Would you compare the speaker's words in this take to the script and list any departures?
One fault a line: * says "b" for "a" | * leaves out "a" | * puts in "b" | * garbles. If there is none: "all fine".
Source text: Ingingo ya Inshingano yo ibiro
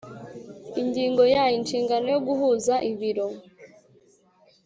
* puts in "guhuza"